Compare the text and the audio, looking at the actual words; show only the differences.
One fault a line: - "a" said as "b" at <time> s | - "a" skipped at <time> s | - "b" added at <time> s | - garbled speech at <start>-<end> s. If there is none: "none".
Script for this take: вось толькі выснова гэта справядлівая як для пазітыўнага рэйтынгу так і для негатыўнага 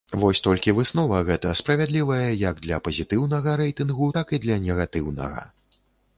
none